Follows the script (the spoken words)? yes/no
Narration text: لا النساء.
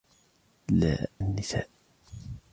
yes